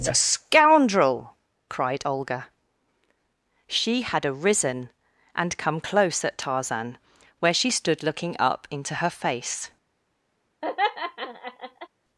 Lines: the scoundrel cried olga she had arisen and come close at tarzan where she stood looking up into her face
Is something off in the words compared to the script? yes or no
no